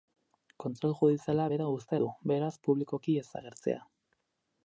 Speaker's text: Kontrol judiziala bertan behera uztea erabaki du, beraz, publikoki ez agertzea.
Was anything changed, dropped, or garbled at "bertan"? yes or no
yes